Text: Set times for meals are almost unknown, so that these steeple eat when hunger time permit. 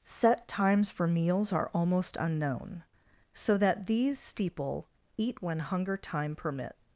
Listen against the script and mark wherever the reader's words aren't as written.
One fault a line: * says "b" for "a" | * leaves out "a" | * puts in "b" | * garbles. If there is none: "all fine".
all fine